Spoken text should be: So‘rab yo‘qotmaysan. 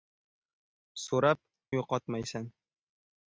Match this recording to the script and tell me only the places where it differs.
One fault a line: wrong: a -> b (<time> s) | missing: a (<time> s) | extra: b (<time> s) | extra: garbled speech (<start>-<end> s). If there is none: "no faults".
no faults